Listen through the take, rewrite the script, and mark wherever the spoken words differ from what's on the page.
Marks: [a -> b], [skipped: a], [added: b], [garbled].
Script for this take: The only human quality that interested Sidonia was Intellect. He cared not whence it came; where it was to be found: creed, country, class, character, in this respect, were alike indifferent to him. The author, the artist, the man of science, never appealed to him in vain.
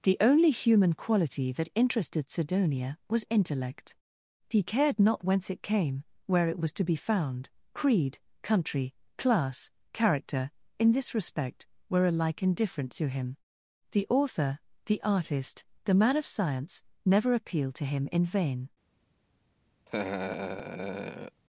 The only human quality that interested Sidonia was Intellect. He cared not whence it came; where it was to be found: creed, country, class, character, in this respect, were alike indifferent to him. The author, the artist, the man of science, never appealed to him in vain.